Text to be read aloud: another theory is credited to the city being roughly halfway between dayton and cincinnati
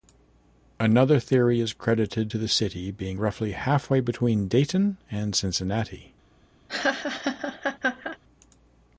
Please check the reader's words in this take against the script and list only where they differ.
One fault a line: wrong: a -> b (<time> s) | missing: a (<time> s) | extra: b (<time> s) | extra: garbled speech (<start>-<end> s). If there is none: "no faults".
no faults